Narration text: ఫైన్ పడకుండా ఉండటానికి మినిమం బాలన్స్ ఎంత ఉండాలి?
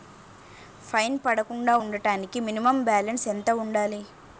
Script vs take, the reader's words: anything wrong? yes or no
no